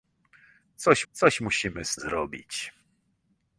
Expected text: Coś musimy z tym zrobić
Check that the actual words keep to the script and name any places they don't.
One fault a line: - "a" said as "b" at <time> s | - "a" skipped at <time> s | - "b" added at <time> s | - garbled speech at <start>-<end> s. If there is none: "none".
- "coś" added at 1.1 s
- "tym" skipped at 2.0 s